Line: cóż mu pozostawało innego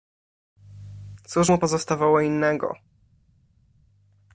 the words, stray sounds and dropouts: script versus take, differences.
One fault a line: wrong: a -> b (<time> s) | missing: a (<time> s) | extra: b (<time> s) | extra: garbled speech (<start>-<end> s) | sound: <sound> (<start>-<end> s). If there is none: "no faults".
no faults